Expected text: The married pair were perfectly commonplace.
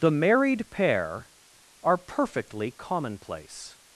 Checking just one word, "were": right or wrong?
wrong